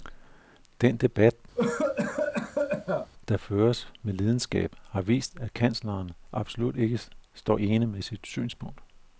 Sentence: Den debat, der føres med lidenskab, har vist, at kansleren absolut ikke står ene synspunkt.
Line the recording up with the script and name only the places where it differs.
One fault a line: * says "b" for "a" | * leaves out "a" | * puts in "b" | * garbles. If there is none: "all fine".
* puts in "med sit"